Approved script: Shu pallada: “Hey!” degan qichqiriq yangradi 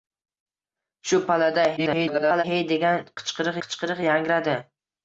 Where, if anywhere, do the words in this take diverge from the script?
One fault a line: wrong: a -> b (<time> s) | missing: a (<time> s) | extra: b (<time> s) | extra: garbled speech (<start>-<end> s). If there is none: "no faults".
extra: garbled speech (1.8-2.4 s)
extra: qichqiriq (3.6 s)